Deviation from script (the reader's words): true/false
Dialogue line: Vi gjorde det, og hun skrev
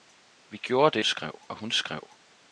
true